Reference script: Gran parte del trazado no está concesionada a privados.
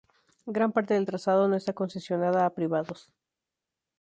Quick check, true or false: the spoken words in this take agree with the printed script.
true